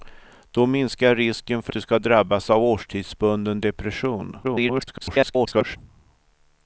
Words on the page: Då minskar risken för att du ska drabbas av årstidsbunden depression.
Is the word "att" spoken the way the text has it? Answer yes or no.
no